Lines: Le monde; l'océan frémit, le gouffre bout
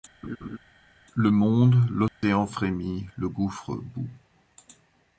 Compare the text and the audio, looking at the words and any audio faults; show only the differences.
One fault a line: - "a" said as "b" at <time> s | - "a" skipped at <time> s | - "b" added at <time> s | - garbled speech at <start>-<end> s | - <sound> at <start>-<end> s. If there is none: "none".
- laugh at 0.2-0.6 s
- dropout at 2.1-2.2 s